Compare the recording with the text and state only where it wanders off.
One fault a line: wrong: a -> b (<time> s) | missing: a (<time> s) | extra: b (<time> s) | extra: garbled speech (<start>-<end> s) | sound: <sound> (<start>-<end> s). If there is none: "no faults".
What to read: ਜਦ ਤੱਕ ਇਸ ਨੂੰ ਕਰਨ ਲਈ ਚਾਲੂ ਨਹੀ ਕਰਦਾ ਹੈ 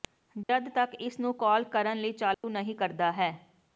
sound: dropout (0.4-0.5 s)
extra: ਕਾਲ (1.4 s)
sound: dropout (2.3-2.4 s)